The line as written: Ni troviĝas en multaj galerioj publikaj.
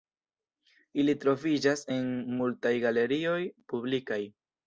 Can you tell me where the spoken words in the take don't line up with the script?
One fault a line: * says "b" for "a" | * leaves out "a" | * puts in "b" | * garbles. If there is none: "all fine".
* says "Ili" for "Ni"